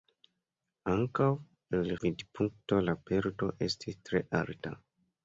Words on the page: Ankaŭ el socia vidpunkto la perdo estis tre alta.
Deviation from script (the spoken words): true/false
true